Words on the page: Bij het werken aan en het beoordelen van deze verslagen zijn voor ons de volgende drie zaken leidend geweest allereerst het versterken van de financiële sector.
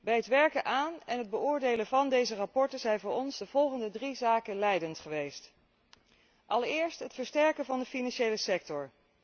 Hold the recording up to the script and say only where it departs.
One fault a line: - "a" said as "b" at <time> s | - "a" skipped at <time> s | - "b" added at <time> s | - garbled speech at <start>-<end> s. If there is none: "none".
none